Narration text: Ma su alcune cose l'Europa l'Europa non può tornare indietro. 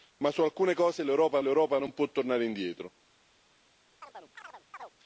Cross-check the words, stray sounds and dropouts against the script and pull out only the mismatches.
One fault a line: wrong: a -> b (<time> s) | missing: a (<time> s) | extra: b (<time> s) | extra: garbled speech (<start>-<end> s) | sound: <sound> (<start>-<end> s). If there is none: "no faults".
sound: chirp (4.0-4.9 s)